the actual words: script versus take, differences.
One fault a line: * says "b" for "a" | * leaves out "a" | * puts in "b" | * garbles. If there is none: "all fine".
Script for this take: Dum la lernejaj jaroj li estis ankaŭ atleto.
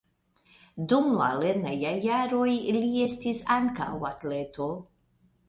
all fine